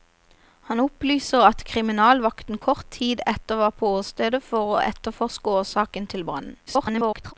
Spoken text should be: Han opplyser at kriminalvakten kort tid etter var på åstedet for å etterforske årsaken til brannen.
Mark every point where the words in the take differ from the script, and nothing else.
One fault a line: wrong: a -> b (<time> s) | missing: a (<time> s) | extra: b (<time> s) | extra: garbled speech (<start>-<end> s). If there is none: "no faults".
extra: garbled speech (6.7-7.3 s)